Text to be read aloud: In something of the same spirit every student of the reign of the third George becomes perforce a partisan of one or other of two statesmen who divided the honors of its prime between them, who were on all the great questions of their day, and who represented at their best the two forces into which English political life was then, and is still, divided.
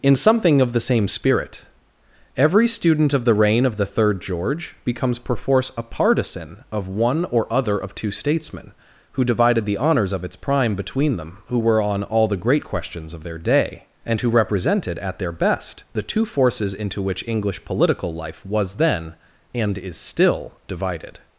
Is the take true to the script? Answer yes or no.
yes